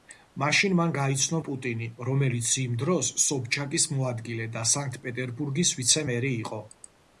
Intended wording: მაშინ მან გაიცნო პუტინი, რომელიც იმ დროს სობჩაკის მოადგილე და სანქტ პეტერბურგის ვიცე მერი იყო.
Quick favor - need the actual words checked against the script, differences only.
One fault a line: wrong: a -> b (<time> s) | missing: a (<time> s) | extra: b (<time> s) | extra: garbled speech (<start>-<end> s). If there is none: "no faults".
no faults